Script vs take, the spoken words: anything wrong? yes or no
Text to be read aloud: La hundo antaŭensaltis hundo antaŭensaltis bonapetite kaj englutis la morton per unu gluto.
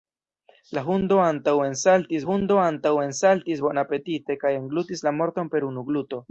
no